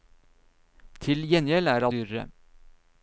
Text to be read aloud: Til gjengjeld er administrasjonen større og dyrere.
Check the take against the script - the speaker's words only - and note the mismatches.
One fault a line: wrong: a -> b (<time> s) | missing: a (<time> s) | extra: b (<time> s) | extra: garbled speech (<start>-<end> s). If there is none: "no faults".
missing: administrasjonen større og (1.9 s)